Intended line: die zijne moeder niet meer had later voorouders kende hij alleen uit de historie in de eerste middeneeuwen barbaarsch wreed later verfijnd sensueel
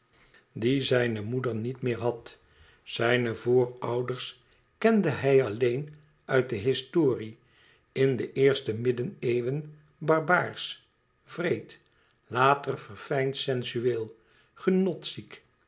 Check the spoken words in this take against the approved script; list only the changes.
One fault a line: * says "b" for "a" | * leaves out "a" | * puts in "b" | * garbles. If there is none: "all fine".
* says "zijne" for "later"